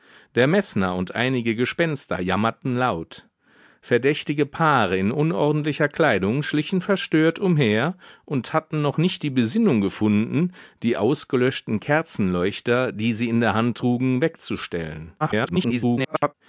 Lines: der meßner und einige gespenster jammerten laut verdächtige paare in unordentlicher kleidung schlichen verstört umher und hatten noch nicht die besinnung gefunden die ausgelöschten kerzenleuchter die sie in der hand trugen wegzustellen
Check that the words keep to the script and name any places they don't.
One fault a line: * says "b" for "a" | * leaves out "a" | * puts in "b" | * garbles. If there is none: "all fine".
* garbles